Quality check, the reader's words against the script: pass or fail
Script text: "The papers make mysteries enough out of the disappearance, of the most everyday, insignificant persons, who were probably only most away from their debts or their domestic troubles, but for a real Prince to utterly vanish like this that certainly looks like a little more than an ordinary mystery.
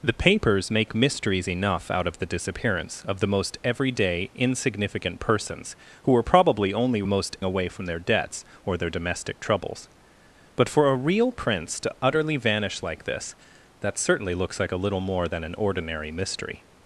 pass